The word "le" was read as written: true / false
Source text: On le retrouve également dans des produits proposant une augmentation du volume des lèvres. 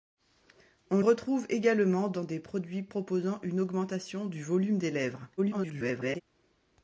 false